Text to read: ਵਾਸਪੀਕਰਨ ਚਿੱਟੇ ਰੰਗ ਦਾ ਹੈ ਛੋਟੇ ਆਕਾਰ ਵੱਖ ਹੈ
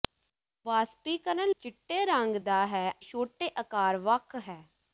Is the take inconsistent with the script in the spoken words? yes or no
no